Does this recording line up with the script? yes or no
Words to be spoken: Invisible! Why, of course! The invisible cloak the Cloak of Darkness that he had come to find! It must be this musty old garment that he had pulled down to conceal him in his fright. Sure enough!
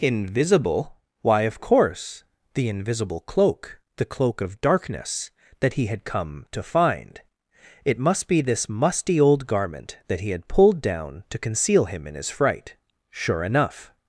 yes